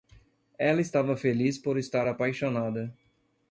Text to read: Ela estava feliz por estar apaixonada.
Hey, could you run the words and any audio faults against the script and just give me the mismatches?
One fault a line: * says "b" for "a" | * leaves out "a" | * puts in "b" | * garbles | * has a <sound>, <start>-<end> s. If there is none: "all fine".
all fine